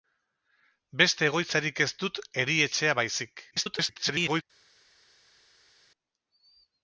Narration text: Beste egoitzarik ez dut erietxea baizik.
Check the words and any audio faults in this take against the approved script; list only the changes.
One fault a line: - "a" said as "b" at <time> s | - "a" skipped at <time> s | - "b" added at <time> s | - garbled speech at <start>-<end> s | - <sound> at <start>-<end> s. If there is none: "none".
- garbled speech at 3.5-4.4 s